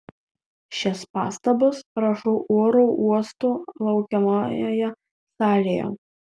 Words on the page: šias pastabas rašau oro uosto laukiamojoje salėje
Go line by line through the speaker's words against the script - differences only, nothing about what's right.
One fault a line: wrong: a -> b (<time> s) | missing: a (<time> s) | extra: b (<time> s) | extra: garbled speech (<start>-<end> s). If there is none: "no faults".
no faults